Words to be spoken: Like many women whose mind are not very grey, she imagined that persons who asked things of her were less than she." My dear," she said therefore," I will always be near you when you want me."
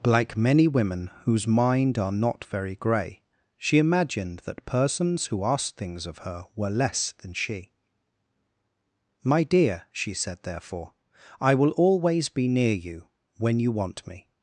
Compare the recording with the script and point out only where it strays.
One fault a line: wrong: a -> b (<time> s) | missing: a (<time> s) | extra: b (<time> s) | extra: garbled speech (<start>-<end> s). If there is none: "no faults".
no faults